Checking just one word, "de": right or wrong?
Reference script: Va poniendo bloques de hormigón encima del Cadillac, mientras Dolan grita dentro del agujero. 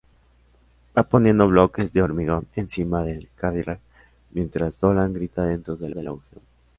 right